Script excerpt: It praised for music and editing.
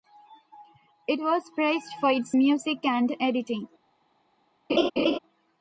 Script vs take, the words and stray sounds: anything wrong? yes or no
yes